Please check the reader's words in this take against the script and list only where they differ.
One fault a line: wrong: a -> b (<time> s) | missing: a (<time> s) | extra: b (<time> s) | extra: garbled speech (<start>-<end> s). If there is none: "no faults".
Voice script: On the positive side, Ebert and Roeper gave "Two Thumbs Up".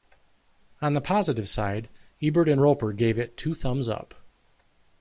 extra: it (3.2 s)